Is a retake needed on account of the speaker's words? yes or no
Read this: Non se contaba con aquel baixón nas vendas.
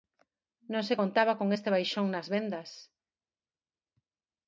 yes